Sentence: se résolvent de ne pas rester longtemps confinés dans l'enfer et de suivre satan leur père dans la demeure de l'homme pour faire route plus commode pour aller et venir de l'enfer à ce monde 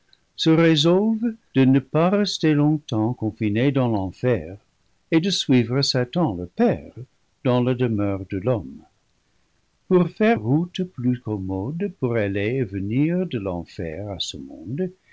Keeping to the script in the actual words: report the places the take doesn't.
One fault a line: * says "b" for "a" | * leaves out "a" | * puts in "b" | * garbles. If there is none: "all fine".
all fine